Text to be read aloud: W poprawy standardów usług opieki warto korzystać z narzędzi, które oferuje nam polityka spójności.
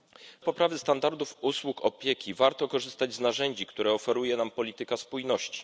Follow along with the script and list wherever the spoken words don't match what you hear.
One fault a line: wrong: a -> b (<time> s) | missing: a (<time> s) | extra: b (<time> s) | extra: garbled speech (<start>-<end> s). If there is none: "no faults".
no faults